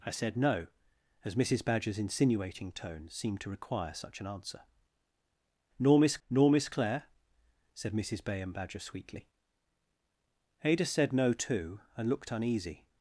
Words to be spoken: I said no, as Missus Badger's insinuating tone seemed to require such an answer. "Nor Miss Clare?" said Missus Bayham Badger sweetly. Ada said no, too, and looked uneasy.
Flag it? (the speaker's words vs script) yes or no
yes